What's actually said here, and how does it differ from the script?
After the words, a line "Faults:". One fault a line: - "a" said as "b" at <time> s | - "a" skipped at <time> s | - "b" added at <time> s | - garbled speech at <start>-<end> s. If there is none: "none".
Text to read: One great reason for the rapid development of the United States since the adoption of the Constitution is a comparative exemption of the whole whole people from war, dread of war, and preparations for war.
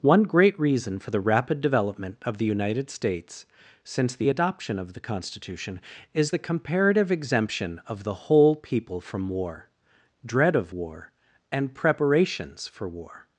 One great reason for the rapid development of the United States since the adoption of the Constitution is the comparative exemption of the whole people from war, dread of war, and preparations for war.
Faults:
- "a" said as "the" at 6.3 s
- "whole" skipped at 8.5 s